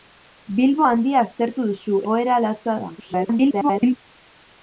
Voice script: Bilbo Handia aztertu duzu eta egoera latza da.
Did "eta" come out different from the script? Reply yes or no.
yes